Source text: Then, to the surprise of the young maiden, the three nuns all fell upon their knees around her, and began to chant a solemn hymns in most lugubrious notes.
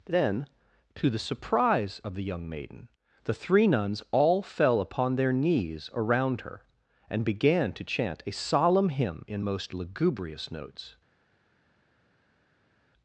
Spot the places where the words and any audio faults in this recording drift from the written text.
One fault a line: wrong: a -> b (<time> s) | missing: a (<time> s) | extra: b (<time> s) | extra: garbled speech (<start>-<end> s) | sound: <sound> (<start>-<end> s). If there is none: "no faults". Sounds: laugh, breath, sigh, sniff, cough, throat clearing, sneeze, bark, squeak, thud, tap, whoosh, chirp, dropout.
wrong: hymns -> hymn (8.9 s)